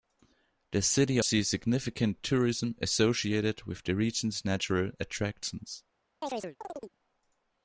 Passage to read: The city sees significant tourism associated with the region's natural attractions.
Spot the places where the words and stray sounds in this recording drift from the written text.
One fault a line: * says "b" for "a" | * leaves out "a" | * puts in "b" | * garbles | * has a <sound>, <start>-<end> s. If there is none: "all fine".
* has a chirp, 6.2-7.0 s